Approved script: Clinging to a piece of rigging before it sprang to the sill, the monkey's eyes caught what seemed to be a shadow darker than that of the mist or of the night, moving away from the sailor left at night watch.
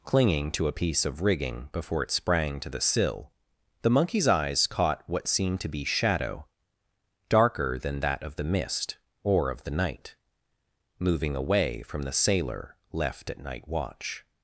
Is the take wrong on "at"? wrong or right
right